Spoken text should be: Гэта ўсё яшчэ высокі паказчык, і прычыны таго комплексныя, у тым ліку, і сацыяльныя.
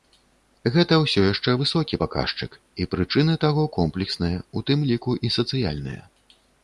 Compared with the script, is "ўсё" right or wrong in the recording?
right